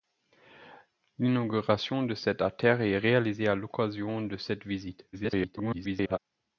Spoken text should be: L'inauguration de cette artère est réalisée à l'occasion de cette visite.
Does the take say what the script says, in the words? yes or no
no